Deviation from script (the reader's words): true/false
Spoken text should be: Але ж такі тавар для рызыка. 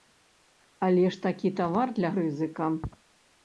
false